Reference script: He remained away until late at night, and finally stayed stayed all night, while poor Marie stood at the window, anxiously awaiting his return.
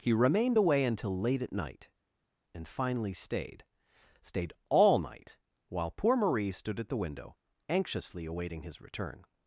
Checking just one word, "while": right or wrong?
right